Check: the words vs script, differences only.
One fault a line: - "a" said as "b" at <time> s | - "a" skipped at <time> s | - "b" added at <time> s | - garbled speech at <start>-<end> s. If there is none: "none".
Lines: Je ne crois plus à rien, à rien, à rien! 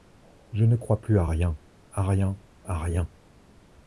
none